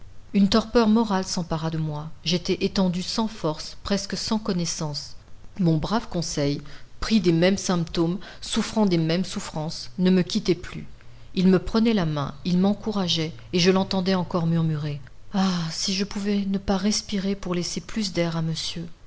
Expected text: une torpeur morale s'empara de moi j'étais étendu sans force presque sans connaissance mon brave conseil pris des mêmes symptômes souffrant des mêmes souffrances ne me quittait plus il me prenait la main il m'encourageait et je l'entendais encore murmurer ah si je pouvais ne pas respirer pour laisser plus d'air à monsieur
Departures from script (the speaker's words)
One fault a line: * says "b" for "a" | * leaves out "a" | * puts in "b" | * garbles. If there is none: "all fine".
all fine